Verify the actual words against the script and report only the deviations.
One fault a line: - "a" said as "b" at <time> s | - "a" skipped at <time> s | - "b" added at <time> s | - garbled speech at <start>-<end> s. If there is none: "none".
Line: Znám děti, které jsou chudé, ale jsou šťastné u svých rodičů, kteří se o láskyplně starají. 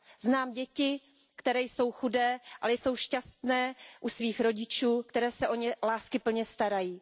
- "ně" added at 5.6 s